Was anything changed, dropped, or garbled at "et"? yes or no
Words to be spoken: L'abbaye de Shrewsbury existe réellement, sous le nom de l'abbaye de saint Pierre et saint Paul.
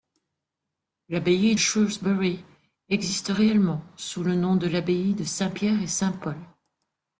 no